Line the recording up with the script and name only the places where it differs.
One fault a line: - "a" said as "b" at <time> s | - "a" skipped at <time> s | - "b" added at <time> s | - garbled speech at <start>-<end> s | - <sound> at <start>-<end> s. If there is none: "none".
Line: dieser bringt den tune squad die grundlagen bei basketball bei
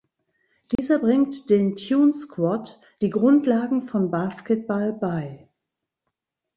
- dropout at 0.8-0.8 s
- "bei" said as "von" at 3.8 s